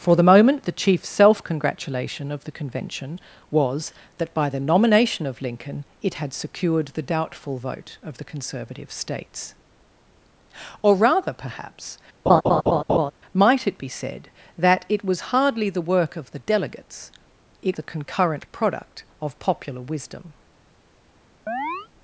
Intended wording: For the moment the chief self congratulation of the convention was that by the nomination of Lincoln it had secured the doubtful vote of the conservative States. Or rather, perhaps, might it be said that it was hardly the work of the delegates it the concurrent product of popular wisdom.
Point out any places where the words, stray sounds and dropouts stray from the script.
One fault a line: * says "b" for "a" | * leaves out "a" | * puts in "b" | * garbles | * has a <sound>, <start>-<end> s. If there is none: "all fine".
* has a laugh, 12.3-13.1 s
* has a chirp, 21.5-21.9 s